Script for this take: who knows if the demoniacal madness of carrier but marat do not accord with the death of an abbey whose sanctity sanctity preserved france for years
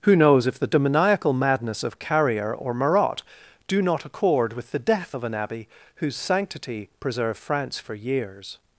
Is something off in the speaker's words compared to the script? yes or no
yes